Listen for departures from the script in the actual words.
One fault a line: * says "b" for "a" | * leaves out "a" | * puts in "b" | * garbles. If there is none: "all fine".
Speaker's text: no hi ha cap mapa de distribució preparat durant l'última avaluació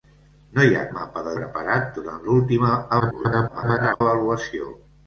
* leaves out "cap"
* leaves out "distribució"
* garbles